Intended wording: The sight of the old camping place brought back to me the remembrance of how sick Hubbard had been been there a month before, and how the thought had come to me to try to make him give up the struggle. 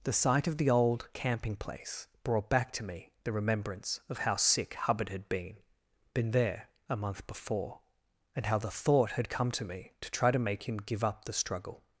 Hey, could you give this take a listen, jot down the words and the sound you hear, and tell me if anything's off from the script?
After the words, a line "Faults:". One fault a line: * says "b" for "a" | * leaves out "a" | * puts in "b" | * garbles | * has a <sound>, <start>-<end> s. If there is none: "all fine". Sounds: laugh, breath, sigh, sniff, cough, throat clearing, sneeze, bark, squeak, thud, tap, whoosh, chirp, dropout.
The sight of the old camping place brought back to me the remembrance of how sick Hubbard had been been there a month before, and how the thought had come to me to try to make him give up the struggle.
Faults:
all fine